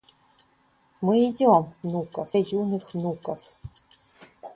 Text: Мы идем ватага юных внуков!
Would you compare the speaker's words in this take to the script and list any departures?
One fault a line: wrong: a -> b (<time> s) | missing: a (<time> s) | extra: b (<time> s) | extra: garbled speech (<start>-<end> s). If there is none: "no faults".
wrong: ватага -> внуков (1.8 s)